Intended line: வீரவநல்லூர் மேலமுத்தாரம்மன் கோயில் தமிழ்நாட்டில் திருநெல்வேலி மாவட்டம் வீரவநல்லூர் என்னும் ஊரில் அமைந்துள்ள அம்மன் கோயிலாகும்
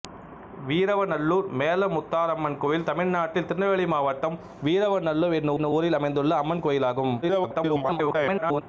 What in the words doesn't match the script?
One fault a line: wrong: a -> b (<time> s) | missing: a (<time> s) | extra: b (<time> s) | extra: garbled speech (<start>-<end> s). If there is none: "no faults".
extra: என்னும் (5.5 s)
extra: garbled speech (7.2-8.6 s)